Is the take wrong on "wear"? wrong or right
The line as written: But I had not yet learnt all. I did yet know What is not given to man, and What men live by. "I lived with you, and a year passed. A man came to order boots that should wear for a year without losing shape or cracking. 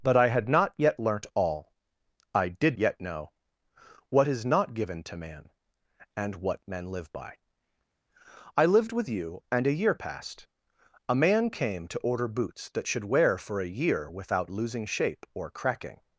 right